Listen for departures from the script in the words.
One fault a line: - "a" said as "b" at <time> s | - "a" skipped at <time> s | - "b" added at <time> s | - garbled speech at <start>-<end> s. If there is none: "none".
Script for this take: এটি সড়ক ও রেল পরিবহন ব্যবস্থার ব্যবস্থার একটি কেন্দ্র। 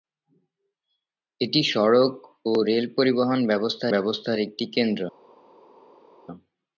none